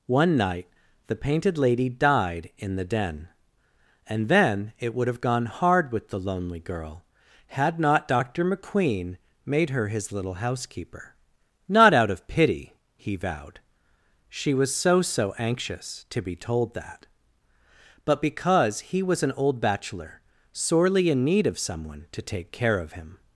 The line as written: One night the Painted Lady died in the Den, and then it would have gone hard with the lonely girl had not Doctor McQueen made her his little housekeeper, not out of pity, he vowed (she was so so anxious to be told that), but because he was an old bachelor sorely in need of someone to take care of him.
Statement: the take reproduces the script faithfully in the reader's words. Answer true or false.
true